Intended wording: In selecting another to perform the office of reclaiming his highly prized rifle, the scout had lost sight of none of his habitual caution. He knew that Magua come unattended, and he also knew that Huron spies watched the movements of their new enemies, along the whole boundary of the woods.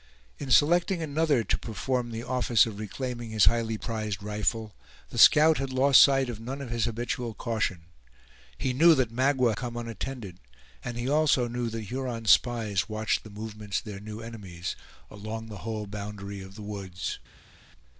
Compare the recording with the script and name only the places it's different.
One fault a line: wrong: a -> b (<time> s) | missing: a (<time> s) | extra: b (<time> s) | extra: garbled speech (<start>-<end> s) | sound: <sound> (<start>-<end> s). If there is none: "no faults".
no faults